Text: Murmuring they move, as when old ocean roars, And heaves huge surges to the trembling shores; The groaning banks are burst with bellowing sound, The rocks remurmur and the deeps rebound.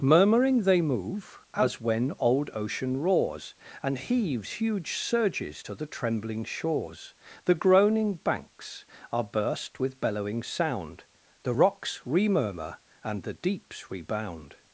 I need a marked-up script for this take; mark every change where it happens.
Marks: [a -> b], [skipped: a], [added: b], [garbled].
Murmuring they move, as when old ocean roars, And heaves huge surges to the trembling shores; The groaning banks are burst with bellowing sound, The rocks remurmur and the deeps rebound.